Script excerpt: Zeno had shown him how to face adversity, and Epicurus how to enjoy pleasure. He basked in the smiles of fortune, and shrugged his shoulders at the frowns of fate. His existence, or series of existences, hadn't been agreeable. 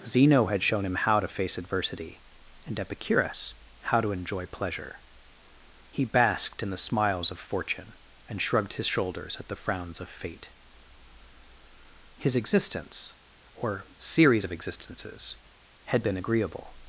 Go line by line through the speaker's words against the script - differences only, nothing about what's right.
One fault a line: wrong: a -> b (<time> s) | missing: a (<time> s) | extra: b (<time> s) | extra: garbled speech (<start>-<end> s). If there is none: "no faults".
wrong: hadn't -> had (15.8 s)